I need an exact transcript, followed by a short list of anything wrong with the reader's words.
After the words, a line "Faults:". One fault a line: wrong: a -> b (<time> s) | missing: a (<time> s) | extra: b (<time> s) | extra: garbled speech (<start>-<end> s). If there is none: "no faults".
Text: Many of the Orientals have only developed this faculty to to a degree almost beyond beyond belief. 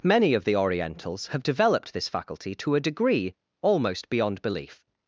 Many of the Orientals have developed this faculty to a degree almost beyond belief.
Faults:
missing: only (1.4 s)
missing: to (2.7 s)
missing: beyond (4.4 s)